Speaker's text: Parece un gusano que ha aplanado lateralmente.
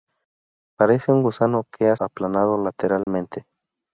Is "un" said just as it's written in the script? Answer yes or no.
yes